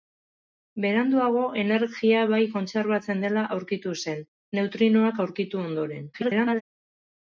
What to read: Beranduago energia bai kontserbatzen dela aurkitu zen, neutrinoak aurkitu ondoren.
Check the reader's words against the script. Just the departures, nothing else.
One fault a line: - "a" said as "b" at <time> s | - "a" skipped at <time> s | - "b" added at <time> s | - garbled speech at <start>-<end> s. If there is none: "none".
- garbled speech at 6.1-6.6 s